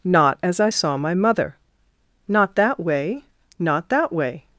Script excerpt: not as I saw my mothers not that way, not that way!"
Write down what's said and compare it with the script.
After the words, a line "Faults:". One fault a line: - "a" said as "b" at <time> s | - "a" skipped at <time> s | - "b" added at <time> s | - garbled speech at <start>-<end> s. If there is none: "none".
not as I saw my mother not that way, not that way!"
Faults:
- "mothers" said as "mother" at 1.1 s